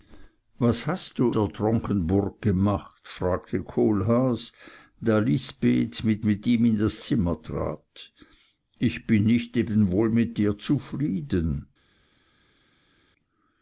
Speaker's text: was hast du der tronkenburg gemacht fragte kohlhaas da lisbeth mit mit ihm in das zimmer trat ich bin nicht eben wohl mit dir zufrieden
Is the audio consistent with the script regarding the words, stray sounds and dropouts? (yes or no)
yes